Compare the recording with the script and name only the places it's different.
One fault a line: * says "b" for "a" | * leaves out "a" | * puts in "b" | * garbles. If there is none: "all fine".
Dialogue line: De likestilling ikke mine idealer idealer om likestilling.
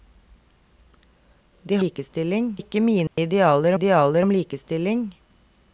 all fine